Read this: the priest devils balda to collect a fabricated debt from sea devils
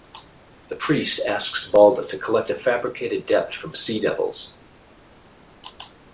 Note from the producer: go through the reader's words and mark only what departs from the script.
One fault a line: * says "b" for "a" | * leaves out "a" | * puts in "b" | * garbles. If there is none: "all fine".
* says "asks" for "devils"